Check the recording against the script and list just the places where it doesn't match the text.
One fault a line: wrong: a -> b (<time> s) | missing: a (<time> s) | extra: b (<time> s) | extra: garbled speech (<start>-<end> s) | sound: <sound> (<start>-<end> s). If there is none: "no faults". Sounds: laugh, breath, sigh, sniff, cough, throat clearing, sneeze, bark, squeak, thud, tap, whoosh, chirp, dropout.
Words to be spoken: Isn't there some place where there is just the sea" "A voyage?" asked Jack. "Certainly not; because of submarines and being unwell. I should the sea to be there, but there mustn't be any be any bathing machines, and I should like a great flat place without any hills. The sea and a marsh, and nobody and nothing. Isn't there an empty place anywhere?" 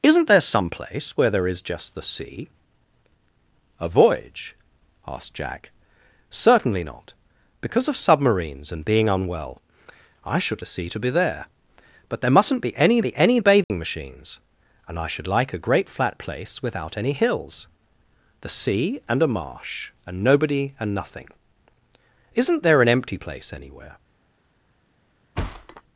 sound: dropout (13.6-13.7 s)
sound: thud (25.4-25.8 s)